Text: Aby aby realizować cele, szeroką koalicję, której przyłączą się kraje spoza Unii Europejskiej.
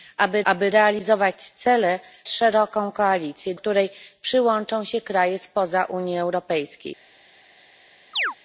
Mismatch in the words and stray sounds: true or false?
true